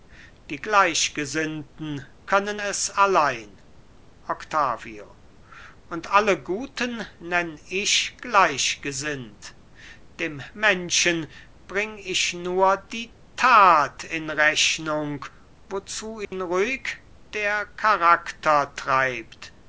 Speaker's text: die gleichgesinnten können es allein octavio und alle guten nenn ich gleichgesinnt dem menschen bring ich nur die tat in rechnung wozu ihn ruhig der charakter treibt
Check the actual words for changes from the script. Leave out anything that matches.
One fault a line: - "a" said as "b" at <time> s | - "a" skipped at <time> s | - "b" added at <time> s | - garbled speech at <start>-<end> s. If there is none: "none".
none